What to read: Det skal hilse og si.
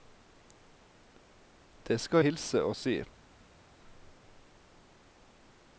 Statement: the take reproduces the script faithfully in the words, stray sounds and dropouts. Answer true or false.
true